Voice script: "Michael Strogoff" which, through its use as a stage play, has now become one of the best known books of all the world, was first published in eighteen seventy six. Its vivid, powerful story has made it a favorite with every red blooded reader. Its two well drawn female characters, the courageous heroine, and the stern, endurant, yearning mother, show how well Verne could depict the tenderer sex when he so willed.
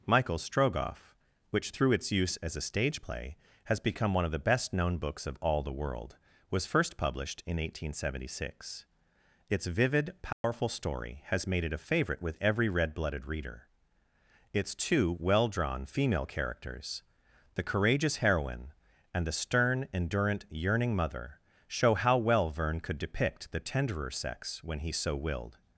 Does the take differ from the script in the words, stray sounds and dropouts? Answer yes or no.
yes